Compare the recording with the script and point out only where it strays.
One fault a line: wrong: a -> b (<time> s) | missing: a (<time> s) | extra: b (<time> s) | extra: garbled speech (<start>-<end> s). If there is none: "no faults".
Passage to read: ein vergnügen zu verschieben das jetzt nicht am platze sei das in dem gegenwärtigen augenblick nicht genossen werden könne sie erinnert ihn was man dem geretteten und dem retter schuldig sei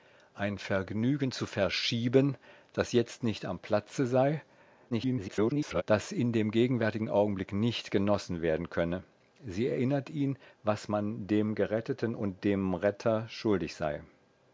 extra: garbled speech (4.9-5.8 s)